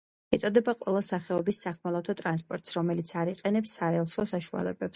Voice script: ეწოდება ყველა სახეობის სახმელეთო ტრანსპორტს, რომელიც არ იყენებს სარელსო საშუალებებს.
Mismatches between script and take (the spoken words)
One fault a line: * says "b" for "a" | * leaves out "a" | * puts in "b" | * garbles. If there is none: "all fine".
all fine